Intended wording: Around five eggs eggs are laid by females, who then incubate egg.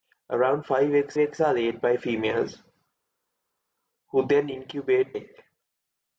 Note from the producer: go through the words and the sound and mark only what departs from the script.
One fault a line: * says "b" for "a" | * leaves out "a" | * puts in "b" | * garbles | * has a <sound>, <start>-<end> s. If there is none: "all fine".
all fine